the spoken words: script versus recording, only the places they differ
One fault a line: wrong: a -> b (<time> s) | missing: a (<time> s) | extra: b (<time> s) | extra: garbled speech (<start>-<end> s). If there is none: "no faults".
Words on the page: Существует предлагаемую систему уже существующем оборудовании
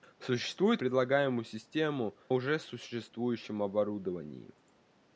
no faults